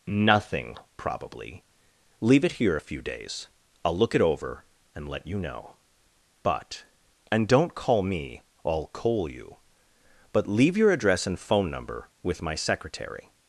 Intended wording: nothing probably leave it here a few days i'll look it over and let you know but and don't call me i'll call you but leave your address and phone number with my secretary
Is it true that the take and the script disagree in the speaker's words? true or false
true